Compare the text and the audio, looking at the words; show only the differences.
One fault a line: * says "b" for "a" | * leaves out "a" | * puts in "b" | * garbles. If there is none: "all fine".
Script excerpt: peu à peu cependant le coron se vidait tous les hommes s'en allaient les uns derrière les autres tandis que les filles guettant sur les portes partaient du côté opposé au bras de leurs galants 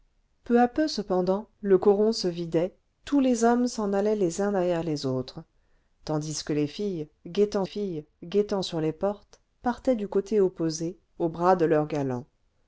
* puts in "filles guettant"